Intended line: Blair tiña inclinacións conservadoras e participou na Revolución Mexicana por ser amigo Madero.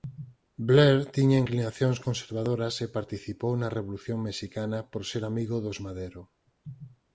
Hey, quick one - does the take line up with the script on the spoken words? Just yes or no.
no